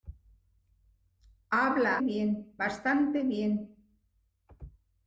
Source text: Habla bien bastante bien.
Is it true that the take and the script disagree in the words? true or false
false